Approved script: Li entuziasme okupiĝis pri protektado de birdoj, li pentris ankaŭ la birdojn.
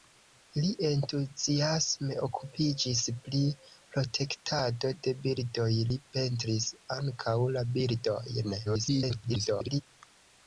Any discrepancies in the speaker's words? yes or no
yes